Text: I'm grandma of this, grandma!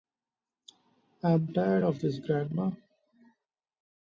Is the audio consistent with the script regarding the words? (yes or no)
no